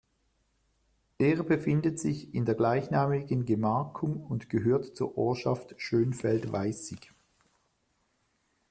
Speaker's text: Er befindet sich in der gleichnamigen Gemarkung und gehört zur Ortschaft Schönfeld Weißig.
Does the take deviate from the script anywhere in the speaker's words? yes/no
no